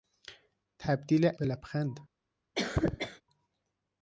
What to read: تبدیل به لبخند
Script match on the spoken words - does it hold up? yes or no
yes